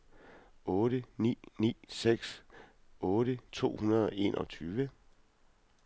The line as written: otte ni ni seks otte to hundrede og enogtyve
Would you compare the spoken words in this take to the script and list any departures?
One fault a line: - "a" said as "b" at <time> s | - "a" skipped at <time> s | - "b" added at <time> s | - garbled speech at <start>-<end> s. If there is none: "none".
none